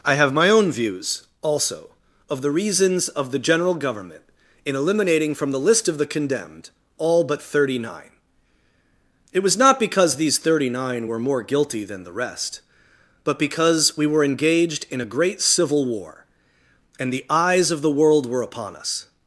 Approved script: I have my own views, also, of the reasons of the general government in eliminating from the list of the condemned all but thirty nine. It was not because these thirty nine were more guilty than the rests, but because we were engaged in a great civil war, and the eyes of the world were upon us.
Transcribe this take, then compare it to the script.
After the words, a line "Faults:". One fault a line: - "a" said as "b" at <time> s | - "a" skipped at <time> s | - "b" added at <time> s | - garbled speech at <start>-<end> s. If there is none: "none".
I have my own views, also, of the reasons of the general government in eliminating from the list of the condemned all but thirty nine. It was not because these thirty nine were more guilty than the rest, but because we were engaged in a great civil war, and the eyes of the world were upon us.
Faults:
- "rests" said as "rest" at 12.1 s